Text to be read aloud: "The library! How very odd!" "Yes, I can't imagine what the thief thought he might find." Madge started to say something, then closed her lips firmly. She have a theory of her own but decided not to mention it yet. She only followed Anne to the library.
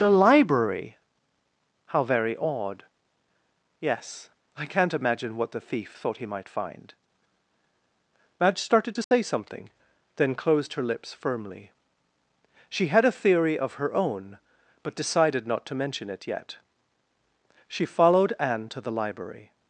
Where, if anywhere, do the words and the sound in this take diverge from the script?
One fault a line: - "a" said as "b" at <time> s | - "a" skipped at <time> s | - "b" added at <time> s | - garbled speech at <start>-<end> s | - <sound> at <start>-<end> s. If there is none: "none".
- dropout at 9.0-9.1 s
- "have" said as "had" at 12.9 s
- "only" skipped at 17.9 s